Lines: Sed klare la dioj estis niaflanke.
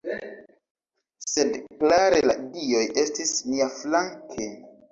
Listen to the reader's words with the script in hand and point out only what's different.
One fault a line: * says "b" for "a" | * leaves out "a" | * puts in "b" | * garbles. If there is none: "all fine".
all fine